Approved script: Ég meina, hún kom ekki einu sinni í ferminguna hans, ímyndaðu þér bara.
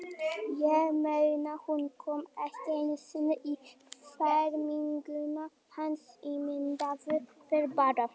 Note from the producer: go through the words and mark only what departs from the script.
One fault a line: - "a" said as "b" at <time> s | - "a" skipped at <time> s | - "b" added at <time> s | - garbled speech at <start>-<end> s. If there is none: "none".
none